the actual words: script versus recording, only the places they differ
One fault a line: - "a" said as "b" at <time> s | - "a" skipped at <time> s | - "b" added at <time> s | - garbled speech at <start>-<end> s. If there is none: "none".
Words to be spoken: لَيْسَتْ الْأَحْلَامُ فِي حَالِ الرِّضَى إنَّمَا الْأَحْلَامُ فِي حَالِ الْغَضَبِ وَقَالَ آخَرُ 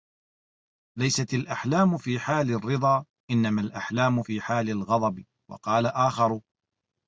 none